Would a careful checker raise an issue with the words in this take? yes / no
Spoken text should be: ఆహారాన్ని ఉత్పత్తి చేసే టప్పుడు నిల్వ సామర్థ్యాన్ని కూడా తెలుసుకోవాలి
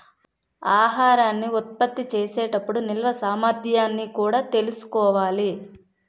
no